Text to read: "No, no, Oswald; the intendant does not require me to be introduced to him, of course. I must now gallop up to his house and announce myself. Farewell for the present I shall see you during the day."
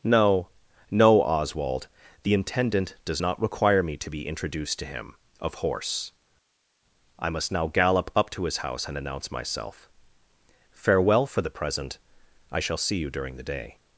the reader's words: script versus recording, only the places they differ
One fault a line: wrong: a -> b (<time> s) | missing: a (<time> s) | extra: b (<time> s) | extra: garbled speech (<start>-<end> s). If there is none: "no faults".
wrong: course -> horse (5.5 s)